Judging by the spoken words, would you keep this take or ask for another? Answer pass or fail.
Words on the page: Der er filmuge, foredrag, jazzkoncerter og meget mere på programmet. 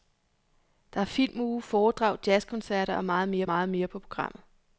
fail